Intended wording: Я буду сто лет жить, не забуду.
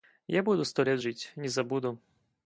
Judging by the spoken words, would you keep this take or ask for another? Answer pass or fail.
pass